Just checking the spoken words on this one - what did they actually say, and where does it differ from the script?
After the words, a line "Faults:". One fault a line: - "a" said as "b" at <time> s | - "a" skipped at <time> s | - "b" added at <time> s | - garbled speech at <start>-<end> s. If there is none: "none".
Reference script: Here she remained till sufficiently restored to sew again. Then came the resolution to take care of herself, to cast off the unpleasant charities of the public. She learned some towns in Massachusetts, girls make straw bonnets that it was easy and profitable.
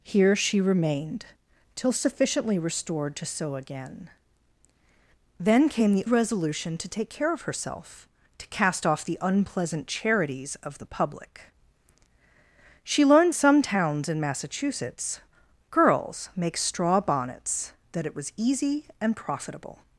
Here she remained till sufficiently restored to sew again. Then came the resolution to take care of herself, to cast off the unpleasant charities of the public. She learned some towns in Massachusetts, girls make straw bonnets that it was easy and profitable.
Faults:
none